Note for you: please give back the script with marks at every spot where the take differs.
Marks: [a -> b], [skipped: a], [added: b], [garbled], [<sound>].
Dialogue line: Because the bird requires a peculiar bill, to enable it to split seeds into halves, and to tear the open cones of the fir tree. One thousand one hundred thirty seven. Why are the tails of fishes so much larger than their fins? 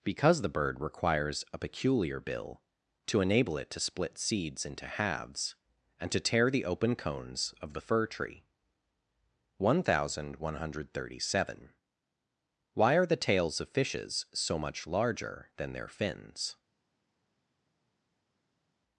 Because the bird requires a peculiar bill, to enable it to split seeds into halves, and to tear the open cones of the fir tree. One thousand one hundred thirty seven. Why are the tails of fishes so much larger than their fins?